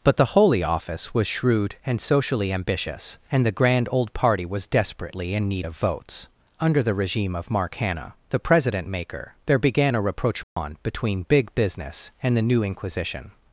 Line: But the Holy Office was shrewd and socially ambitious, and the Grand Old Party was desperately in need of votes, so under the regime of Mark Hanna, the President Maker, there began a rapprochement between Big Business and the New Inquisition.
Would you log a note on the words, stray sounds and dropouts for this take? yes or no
yes